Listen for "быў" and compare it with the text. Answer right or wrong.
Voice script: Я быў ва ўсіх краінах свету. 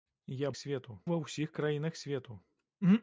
wrong